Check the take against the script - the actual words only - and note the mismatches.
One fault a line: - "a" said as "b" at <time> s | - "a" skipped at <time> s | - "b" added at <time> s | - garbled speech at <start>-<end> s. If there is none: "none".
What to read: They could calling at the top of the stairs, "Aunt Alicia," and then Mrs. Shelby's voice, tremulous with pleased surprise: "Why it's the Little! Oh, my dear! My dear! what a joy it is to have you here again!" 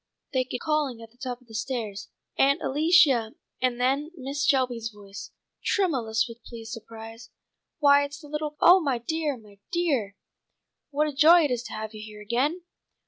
none